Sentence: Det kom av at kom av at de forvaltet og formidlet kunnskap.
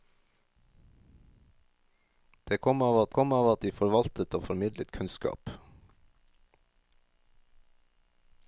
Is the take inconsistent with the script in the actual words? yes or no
no